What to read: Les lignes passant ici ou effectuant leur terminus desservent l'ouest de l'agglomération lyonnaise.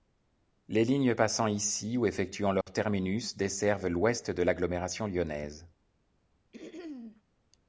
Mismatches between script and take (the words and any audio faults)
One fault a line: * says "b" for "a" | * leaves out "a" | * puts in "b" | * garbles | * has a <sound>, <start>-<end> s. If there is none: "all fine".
* has a dropout, 2.6-2.7 s
* has a throat clearing, 6.5-7.2 s